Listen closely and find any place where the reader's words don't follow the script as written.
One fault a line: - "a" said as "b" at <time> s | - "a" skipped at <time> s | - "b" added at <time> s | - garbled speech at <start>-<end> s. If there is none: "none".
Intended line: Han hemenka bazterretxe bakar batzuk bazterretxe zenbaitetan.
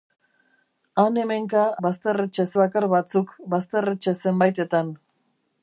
none